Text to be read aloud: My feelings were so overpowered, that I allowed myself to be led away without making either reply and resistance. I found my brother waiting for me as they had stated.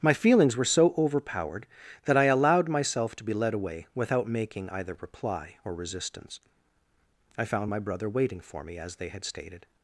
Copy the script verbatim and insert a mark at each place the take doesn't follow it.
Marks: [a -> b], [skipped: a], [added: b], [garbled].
My feelings were so overpowered, that I allowed myself to be led away without making either reply [and -> or] resistance. I found my brother waiting for me as they had stated.